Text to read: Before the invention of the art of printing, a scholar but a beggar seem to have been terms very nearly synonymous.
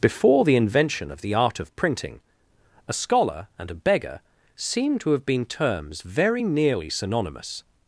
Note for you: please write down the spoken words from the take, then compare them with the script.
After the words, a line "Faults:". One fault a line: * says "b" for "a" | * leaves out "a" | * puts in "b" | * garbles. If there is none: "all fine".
Before the invention of the art of printing, a scholar and a beggar seem to have been terms very nearly synonymous.
Faults:
* says "and" for "but"